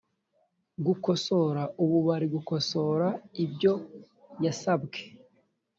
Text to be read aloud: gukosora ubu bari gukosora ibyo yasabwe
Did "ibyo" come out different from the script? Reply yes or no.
no